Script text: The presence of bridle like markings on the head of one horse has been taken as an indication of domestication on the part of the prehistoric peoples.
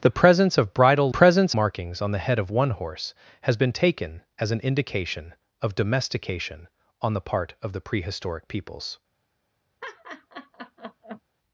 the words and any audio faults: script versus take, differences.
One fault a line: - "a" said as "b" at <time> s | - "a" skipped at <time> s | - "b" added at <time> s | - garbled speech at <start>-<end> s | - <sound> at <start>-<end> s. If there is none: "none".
- "like" said as "presence" at 1.1 s
- laugh at 9.8-11.2 s